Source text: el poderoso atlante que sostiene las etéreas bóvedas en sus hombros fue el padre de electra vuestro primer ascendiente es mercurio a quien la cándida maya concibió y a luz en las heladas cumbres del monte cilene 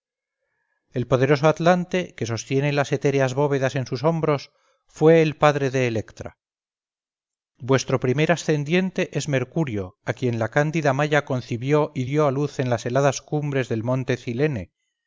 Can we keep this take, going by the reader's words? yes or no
no